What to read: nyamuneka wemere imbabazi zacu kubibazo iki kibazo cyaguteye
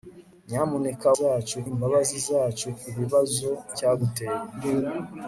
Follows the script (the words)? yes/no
no